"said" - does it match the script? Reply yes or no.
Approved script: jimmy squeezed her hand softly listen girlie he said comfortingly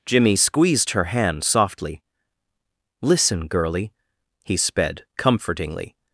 no